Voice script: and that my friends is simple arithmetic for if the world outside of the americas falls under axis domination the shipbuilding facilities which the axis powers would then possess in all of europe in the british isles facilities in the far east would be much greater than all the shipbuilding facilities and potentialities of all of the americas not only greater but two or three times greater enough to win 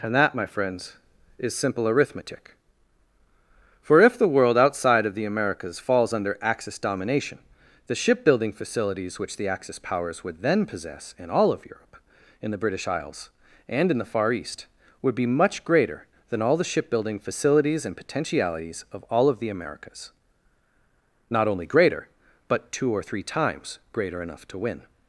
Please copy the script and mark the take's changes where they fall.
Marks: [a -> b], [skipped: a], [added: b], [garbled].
and that my friends is simple arithmetic for if the world outside of the americas falls under axis domination the shipbuilding facilities which the axis powers would then possess in all of europe in the british isles [facilities -> and] in the far east would be much greater than all the shipbuilding facilities and potentialities of all of the americas not only greater but two or three times greater enough to win